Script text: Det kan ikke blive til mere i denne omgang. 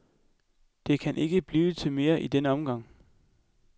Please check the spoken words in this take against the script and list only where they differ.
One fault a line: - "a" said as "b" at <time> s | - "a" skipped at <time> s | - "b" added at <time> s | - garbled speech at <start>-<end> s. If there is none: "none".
none